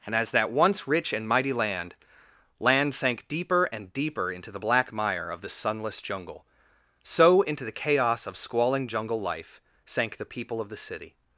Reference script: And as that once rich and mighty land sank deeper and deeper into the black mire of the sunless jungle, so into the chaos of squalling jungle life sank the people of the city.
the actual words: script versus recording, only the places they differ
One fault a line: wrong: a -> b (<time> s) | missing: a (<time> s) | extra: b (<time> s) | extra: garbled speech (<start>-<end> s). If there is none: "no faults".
extra: land (2.6 s)